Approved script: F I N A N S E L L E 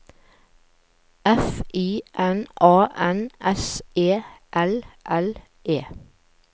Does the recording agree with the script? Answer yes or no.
yes